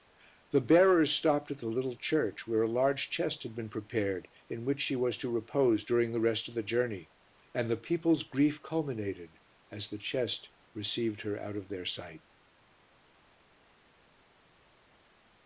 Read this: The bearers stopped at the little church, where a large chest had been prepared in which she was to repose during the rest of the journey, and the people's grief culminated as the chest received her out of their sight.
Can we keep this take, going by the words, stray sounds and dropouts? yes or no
yes